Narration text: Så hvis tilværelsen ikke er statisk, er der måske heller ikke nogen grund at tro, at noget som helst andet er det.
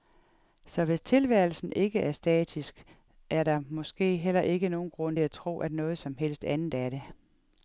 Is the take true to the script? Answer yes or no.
yes